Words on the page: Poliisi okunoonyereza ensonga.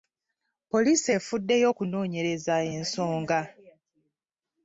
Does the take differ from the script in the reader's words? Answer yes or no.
yes